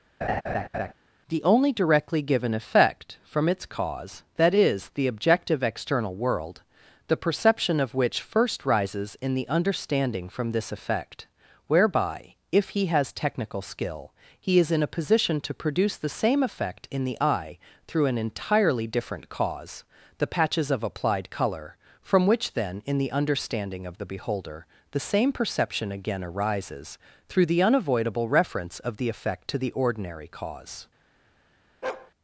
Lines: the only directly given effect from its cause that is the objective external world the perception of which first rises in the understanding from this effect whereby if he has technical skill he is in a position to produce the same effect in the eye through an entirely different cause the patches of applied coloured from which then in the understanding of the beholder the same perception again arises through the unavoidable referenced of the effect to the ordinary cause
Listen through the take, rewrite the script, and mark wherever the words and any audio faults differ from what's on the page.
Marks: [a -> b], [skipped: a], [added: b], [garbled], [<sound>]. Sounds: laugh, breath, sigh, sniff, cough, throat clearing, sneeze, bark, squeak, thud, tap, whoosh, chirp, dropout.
[laugh] the only directly given effect from its cause that is the objective external world the perception of which first rises in the understanding from this effect whereby if he has technical skill he is in a position to produce the same effect in the eye through an entirely different cause the patches of applied [coloured -> colour] from which then in the understanding of the beholder the same perception again arises through the unavoidable [referenced -> reference] of the effect to the ordinary cause [bark]